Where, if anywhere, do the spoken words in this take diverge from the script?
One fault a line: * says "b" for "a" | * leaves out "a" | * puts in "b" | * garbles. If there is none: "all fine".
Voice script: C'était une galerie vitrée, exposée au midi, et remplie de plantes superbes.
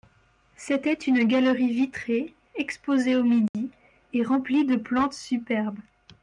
all fine